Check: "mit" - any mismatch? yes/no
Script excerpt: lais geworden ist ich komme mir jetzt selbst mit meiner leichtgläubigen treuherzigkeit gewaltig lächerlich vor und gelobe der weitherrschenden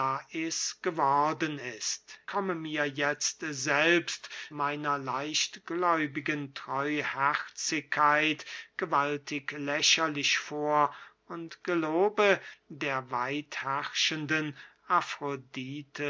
yes